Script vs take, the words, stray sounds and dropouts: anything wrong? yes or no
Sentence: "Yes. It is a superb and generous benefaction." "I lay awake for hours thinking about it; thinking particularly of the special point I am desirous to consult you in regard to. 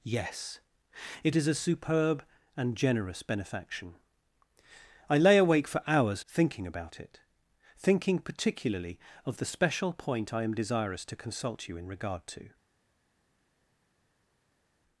no